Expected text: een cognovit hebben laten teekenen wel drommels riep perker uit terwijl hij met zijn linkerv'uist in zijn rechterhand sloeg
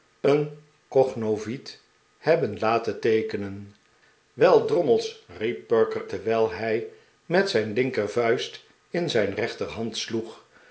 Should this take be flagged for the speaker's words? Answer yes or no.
yes